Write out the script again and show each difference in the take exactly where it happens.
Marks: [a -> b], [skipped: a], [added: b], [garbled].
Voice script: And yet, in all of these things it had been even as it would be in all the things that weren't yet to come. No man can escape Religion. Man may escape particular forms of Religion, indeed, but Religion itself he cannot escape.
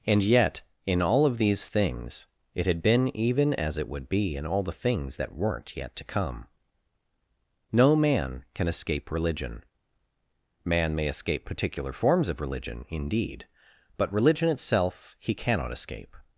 And yet, in all of these things it had been even as it would be in all the things that weren't yet to come. No man can escape Religion. Man may escape particular forms of Religion, indeed, but Religion itself he cannot escape.